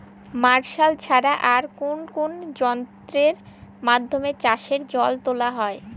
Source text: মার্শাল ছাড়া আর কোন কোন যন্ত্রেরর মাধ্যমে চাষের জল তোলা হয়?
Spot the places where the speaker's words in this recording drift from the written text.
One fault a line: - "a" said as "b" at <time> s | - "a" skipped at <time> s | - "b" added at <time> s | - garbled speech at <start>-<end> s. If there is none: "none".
none